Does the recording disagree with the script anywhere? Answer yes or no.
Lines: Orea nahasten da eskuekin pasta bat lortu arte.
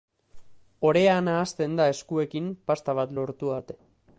no